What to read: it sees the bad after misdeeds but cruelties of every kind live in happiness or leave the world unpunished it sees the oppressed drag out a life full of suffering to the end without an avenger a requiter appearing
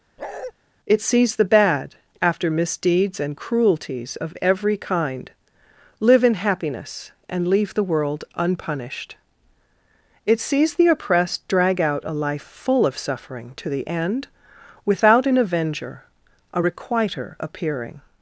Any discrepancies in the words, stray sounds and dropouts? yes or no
yes